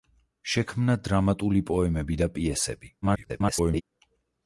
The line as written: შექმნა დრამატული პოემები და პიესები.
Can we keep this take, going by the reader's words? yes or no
no